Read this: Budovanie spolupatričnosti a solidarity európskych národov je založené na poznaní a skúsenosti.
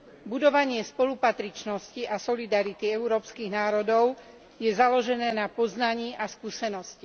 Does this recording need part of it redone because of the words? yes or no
no